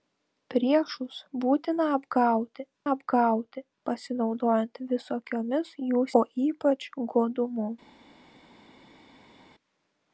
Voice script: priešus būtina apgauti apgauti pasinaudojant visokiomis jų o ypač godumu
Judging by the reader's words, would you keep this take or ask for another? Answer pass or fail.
pass